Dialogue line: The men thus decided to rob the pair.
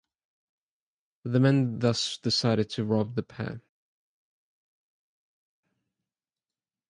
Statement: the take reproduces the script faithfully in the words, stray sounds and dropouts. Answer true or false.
true